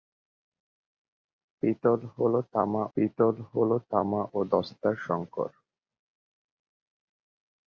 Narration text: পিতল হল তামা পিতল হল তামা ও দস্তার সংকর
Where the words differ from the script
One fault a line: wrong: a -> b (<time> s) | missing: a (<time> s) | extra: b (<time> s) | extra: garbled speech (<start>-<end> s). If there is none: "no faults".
no faults